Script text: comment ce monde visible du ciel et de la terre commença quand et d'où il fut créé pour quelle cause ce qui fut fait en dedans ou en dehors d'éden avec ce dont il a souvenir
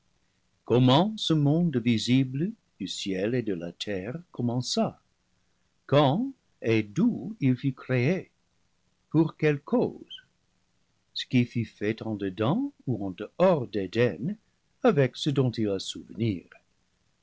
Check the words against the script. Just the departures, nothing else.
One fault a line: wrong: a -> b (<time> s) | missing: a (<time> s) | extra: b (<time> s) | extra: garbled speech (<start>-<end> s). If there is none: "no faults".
no faults